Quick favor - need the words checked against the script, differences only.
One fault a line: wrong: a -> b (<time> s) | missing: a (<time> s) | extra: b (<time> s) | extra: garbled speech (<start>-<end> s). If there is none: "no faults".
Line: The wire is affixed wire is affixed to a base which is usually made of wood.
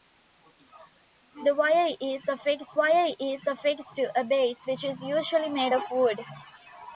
no faults